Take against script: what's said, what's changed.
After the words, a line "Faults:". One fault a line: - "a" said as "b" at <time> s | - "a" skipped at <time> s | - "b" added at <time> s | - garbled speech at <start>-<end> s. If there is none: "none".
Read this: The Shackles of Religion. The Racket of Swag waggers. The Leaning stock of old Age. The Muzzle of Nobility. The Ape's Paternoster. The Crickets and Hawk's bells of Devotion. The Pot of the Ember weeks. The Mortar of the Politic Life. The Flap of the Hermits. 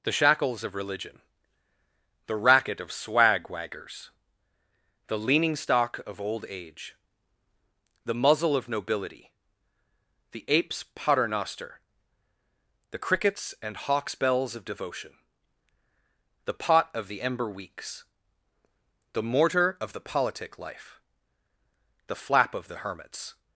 The Shackles of Religion. The Racket of Swag waggers. The Leaning stock of old Age. The Muzzle of Nobility. The Ape's Paternoster. The Crickets and Hawk's bells of Devotion. The Pot of the Ember weeks. The Mortar of the Politic Life. The Flap of the Hermits.
Faults:
none